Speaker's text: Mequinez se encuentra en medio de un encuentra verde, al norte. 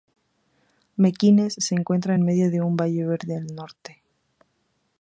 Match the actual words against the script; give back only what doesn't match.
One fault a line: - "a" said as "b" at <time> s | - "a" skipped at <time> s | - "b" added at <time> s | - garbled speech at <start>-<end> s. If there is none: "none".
- "encuentra" said as "valle" at 2.8 s